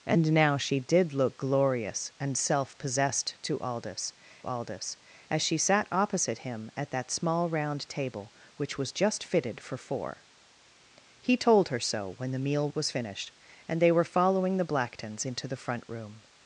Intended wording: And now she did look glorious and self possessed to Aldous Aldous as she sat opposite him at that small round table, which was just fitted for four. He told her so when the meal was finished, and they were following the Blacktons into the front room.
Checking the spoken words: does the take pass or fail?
pass